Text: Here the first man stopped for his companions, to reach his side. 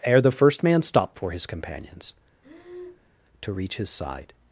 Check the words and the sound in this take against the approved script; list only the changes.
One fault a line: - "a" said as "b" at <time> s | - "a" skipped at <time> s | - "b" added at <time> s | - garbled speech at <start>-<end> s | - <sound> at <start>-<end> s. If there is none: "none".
- "Here" said as "Ere" at 0.0 s
- breath at 2.4-3.1 s